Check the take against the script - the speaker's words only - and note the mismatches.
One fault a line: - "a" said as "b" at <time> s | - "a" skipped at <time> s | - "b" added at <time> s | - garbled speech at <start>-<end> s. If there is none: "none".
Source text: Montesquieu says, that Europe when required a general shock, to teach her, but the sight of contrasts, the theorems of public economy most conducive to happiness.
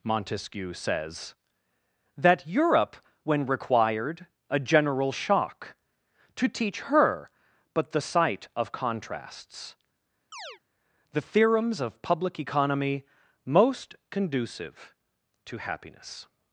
none